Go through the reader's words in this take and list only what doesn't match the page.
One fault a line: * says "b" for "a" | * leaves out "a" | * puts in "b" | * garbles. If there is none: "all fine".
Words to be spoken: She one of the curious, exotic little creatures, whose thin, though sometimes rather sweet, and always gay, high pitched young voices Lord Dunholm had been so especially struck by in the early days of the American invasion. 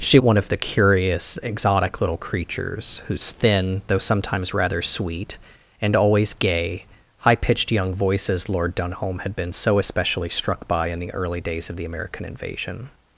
all fine